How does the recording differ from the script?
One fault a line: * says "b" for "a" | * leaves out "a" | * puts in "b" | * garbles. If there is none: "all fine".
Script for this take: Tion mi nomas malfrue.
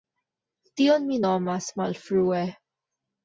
all fine